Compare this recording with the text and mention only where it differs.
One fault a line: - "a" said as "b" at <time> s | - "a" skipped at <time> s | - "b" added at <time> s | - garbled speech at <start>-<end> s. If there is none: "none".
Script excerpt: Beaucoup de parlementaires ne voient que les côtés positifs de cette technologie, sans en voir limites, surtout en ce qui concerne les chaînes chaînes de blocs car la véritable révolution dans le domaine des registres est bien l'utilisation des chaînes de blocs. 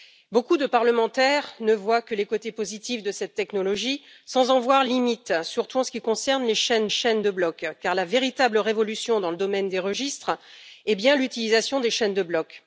none